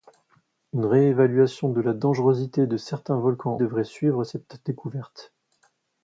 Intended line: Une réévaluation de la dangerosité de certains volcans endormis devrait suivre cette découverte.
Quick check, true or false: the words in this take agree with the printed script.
false